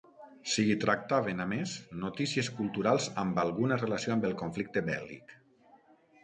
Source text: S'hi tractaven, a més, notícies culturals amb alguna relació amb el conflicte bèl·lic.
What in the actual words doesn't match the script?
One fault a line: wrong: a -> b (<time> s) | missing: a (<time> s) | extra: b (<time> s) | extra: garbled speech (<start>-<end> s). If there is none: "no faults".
no faults